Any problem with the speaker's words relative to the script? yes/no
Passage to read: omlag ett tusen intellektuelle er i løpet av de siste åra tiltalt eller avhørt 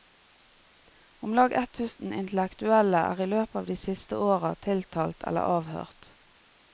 no